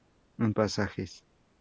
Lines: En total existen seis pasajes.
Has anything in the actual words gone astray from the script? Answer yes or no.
yes